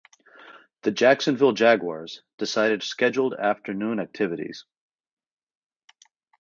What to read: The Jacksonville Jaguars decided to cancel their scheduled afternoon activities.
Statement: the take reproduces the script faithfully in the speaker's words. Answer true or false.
false